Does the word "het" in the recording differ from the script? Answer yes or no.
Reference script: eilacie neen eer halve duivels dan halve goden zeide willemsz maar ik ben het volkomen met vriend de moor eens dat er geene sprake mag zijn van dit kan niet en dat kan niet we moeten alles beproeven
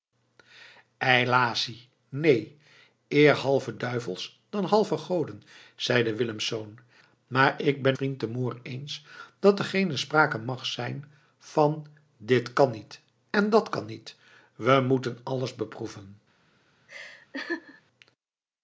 yes